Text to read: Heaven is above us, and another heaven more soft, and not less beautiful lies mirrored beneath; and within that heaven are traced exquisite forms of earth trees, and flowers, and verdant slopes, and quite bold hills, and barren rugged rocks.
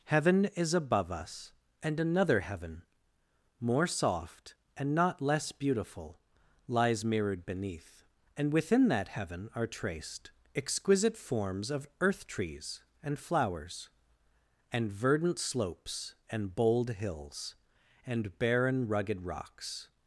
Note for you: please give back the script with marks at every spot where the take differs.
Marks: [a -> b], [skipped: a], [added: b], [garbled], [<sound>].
Heaven is above us, and another heaven more soft, and not less beautiful lies mirrored beneath; and within that heaven are traced exquisite forms of earth trees, and flowers, and verdant slopes, and [skipped: quite] bold hills, and barren rugged rocks.